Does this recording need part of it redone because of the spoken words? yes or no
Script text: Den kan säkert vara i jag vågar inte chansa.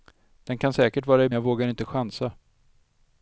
no